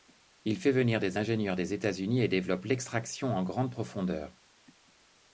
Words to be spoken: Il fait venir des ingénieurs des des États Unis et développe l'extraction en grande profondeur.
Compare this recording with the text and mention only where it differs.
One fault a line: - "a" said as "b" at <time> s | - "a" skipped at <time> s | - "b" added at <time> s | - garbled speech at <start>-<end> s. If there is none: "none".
- "des" skipped at 1.7 s